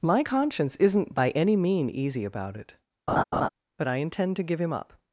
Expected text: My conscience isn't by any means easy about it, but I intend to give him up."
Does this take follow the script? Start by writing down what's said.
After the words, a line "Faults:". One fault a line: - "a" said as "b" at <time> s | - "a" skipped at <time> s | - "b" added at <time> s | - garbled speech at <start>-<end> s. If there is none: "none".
My conscience isn't by any mean easy about it, but I intend to give him up."
Faults:
- "means" said as "mean" at 1.6 s